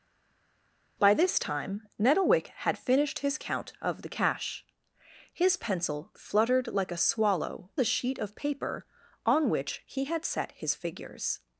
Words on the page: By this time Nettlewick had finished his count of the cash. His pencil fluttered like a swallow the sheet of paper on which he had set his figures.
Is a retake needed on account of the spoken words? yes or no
no